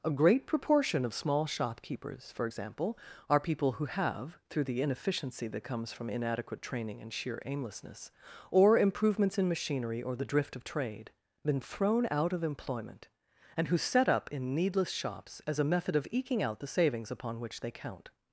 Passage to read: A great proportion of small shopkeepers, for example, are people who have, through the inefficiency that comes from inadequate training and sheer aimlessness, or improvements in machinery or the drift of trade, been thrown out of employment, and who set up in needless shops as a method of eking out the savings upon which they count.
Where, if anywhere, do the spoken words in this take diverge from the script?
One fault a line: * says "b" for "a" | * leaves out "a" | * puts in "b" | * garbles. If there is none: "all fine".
all fine